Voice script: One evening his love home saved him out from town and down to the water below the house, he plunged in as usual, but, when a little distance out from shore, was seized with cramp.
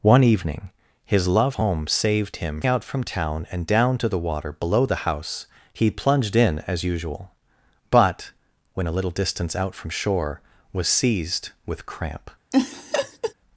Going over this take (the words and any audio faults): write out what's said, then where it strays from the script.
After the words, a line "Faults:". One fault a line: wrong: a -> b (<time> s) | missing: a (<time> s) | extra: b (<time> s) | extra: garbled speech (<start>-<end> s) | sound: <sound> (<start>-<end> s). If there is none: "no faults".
One evening his love home saved him out from town and down to the water below the house, he plunged in as usual, but, when a little distance out from shore, was seized with cramp.
Faults:
sound: laugh (12.5-13.3 s)